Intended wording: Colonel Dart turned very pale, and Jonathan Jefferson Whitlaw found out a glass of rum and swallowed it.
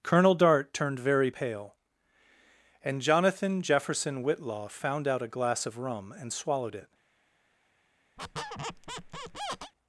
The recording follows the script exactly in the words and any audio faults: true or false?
false